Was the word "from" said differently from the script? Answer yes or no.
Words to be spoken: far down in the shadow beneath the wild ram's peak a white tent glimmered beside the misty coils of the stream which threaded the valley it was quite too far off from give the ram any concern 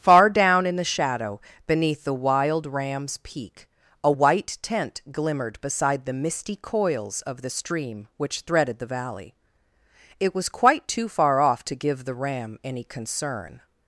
yes